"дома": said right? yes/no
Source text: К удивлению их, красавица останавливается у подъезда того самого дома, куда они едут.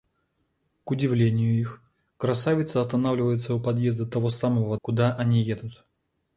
no